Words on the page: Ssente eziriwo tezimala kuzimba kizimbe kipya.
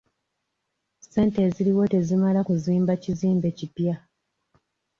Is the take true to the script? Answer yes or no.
yes